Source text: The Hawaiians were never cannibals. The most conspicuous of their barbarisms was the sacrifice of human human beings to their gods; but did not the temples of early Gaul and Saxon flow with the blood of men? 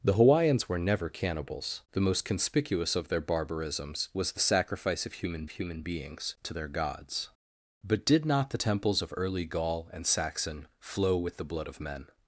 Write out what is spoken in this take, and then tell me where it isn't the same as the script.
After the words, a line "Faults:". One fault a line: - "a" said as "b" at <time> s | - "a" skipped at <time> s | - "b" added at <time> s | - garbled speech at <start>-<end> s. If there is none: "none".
The Hawaiians were never cannibals. The most conspicuous of their barbarisms was the sacrifice of human human beings to their gods; but did not the temples of early Gaul and Saxon flow with the blood of men?
Faults:
none